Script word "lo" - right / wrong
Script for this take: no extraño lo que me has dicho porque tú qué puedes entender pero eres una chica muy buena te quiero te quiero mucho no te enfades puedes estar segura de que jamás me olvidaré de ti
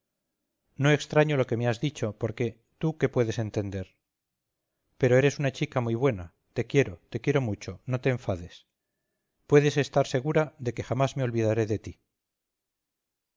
right